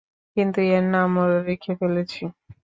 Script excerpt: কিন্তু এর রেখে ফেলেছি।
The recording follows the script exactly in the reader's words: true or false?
false